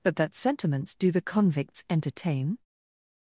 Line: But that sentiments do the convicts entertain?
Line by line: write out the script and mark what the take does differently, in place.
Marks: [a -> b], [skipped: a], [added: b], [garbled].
But that sentiments do the convicts entertain?